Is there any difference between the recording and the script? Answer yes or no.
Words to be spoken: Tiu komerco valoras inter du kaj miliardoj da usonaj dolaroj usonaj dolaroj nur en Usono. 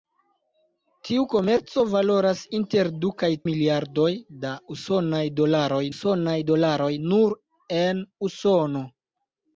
no